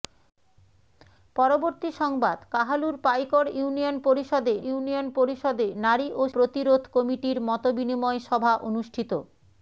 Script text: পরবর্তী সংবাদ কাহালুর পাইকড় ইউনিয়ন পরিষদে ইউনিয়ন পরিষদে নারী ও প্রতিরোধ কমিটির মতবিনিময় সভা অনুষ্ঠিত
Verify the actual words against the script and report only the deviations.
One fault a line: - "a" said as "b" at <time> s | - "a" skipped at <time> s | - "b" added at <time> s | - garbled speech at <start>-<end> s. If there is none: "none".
none